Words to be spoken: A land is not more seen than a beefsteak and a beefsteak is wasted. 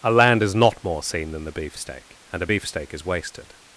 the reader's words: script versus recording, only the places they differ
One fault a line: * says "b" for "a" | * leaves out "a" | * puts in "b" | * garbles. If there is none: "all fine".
* says "the" for "a"